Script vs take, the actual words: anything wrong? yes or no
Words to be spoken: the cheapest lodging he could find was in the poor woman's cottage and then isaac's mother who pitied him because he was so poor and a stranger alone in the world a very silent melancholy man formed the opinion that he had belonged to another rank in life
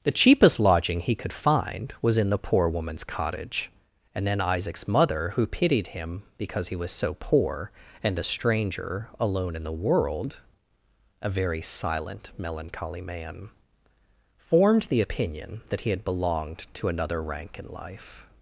no